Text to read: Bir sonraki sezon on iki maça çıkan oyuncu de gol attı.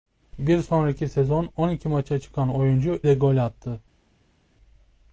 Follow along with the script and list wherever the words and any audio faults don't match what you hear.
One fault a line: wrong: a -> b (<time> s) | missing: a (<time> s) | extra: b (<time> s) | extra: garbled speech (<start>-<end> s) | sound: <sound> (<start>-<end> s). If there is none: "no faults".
no faults